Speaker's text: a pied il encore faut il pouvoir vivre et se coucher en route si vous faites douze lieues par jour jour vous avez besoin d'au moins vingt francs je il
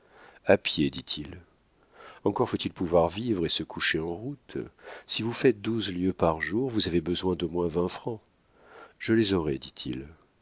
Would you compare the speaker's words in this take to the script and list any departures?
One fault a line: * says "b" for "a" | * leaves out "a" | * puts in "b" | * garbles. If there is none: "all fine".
* puts in "dit"
* leaves out "jour"
* puts in "les aurai dit"